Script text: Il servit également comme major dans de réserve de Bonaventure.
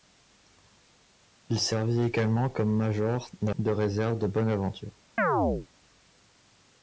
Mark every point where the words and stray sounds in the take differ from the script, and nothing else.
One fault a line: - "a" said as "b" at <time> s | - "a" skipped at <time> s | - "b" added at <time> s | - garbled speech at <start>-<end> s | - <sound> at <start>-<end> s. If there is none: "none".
- chirp at 5.2-5.7 s